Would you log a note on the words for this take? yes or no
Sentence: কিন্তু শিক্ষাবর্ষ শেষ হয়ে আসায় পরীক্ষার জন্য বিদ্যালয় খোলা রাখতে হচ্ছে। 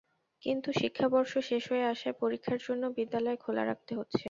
no